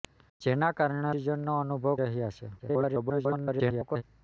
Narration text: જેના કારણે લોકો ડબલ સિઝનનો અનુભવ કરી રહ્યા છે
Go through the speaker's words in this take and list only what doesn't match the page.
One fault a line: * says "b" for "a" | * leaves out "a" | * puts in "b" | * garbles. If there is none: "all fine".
* leaves out "લોકો ડબલ"
* leaves out "કરી"
* garbles